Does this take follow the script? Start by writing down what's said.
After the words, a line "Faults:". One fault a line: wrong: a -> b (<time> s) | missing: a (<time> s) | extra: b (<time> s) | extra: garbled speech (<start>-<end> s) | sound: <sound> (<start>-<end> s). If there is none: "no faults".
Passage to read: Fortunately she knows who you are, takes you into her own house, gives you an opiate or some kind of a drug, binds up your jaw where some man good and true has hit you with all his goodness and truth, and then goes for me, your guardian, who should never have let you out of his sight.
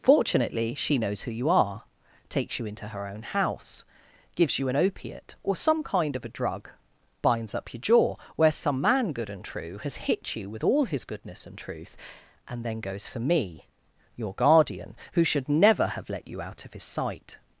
Fortunately she knows who you are, takes you into her own house, gives you an opiate or some kind of a drug, binds up your jaw where some man good and true has hit you with all his goodness and truth, and then goes for me, your guardian, who should never have let you out of his sight.
Faults:
no faults